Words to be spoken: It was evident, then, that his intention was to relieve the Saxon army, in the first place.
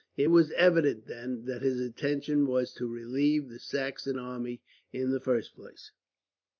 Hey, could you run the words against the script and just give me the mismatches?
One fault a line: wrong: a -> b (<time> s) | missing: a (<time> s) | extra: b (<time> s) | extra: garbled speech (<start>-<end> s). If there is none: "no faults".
no faults